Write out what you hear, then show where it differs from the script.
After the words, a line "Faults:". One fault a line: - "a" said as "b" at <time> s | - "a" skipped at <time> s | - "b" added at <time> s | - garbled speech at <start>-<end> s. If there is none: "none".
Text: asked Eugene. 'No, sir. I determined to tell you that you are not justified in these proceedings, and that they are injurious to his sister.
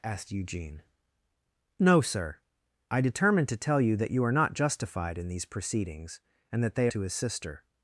asked Eugene. 'No, sir. I determined to tell you that you are not justified in these proceedings, and that they to his sister.
Faults:
- "are injurious" skipped at 6.9 s